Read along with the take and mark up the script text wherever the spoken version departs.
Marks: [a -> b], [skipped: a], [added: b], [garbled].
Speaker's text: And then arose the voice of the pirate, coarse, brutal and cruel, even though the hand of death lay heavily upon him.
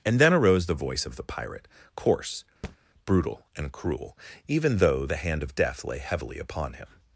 And then arose the voice of the pirate, coarse, brutal and cruel, even though the hand of death lay heavily upon him.